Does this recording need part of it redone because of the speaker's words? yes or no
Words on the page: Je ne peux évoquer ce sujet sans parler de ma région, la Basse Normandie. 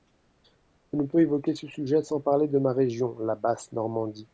no